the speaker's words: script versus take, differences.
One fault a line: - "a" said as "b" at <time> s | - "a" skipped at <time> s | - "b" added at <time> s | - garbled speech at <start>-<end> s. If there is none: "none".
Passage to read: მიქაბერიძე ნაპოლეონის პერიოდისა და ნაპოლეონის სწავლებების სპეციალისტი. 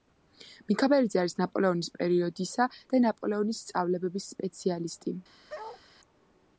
- "არის" added at 1.2 s